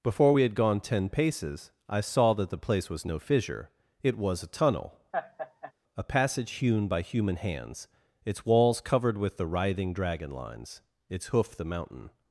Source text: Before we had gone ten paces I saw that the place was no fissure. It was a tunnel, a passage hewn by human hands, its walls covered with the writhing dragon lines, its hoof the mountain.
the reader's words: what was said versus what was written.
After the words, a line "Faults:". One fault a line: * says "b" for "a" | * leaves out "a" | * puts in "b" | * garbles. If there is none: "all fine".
Before we had gone ten paces I saw that the place was no fissure. It was a tunnel, a passage hewn by human hands, its walls covered with the writhing dragon lines, its hoof the mountain.
Faults:
all fine